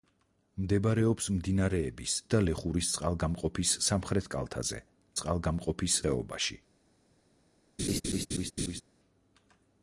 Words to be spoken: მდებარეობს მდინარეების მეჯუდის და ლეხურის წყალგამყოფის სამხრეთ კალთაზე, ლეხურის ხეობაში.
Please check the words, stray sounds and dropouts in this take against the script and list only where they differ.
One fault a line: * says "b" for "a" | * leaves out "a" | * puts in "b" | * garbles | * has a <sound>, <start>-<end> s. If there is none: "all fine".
* leaves out "მეჯუდის"
* says "წყალგამყოფის" for "ლეხურის"
* has a laugh, 7.8-8.8 s